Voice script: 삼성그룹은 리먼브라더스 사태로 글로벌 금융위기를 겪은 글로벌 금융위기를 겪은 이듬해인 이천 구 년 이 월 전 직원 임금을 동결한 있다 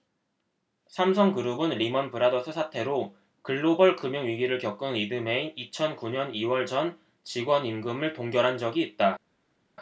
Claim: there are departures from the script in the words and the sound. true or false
true